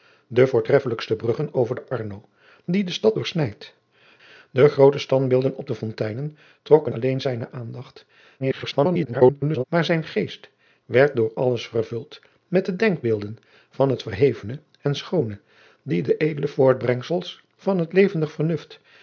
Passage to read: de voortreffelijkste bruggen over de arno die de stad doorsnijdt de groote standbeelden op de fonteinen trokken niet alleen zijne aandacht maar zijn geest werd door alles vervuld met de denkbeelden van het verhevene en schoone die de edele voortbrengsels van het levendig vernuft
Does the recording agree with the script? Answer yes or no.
no